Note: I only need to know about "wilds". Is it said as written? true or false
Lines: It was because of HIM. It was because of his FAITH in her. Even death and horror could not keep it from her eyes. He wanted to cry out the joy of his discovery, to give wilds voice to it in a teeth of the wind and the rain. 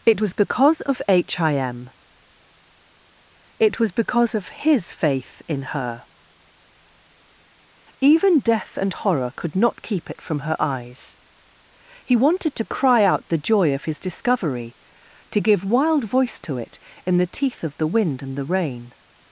false